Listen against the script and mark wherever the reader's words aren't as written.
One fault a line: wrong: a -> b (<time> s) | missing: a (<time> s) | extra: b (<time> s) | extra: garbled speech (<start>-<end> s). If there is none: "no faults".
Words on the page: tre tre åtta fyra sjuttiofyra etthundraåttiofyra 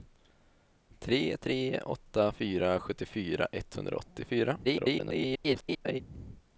extra: garbled speech (4.6-6.0 s)